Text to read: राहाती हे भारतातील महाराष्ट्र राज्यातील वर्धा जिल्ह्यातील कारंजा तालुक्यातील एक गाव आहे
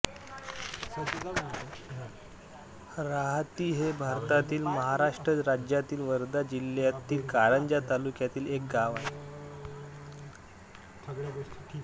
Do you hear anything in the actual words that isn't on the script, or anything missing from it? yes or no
no